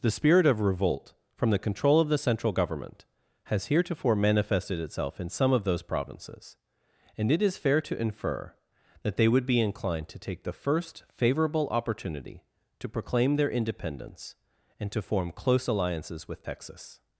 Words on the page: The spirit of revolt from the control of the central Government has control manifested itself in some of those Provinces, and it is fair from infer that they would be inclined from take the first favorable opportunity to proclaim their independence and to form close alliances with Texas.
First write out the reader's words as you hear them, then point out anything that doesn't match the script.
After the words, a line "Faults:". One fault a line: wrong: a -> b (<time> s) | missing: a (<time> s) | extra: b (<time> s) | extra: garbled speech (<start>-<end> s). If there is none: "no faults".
The spirit of revolt from the control of the central Government has heretofore manifested itself in some of those Provinces, and it is fair to infer that they would be inclined to take the first favorable opportunity to proclaim their independence and to form close alliances with Texas.
Faults:
wrong: control -> heretofore (3.7 s)
wrong: from -> to (7.8 s)
wrong: from -> to (10.1 s)